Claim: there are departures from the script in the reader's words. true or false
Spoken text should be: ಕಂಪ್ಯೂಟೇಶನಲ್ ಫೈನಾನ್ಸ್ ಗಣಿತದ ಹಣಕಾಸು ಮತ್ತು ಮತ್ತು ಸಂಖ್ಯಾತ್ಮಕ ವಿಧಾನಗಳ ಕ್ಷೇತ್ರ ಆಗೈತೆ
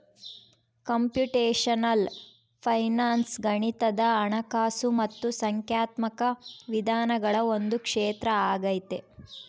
true